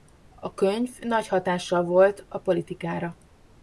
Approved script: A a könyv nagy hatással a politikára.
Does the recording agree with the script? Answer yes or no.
no